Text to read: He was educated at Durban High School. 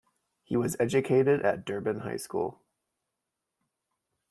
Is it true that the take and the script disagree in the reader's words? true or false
false